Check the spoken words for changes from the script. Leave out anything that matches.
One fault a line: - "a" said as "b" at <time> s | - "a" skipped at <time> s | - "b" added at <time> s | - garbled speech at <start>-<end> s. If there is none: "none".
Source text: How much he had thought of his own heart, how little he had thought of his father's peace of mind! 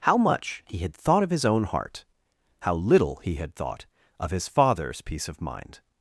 none